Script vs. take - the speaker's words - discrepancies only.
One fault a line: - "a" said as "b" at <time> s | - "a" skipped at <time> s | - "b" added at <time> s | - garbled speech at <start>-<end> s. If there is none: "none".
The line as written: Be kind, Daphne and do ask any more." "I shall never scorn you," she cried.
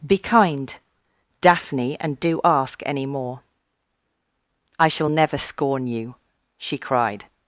none